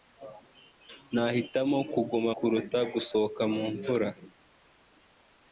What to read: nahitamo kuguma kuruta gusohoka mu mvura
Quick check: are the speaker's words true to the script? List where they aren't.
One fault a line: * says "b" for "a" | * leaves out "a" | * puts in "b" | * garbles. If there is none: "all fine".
all fine